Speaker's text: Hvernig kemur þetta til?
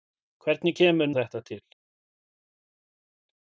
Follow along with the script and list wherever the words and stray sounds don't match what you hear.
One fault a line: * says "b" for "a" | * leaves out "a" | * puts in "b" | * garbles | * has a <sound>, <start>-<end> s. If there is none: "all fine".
all fine